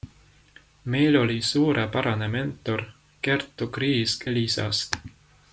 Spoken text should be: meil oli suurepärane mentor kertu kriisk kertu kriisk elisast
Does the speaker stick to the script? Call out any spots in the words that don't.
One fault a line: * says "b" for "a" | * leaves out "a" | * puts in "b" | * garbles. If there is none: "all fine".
* leaves out "kertu kriisk"